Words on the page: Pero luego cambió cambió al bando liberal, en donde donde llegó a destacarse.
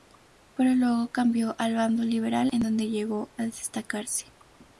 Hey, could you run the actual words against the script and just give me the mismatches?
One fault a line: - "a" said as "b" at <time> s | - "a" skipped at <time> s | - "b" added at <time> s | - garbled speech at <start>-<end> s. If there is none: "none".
- "cambió" skipped at 1.6 s
- "donde" skipped at 2.9 s